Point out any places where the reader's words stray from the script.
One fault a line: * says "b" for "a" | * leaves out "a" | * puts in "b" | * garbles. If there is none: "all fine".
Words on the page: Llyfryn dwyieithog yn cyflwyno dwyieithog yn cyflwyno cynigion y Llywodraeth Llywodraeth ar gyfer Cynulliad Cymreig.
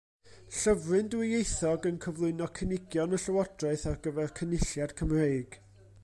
* leaves out "dwyieithog yn cyflwyno"
* leaves out "Llywodraeth"